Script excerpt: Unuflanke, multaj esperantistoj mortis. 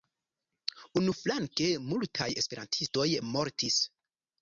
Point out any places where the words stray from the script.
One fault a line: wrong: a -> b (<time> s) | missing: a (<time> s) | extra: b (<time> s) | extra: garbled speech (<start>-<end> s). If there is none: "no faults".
no faults